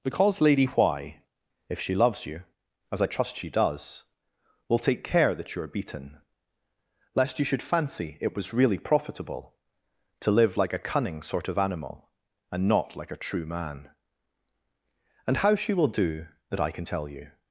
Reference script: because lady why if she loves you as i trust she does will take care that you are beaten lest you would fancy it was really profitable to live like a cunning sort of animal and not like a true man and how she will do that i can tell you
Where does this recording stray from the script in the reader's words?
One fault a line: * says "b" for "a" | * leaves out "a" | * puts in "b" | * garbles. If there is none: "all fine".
* says "should" for "would"